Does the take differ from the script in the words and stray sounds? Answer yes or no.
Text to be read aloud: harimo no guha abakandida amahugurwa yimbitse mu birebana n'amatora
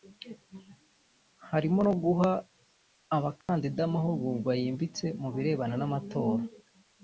yes